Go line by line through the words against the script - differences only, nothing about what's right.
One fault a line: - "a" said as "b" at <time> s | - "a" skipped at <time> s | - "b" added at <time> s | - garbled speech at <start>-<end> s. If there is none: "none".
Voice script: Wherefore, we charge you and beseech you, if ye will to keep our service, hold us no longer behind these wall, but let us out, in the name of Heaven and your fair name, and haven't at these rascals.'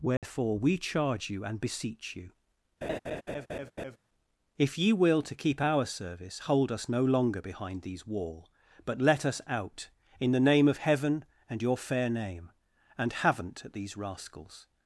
none